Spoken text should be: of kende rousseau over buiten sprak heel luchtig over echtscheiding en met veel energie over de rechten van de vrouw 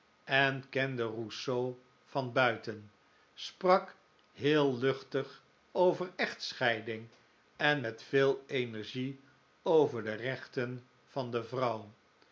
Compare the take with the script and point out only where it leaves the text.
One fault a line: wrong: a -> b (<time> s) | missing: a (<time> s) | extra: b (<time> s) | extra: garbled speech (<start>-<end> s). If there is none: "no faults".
wrong: of -> en (0.2 s)
wrong: over -> van (2.0 s)